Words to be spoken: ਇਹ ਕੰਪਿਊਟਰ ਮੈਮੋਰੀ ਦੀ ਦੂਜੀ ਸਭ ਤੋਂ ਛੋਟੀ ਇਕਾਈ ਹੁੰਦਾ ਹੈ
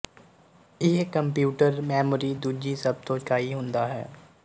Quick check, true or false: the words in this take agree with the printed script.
false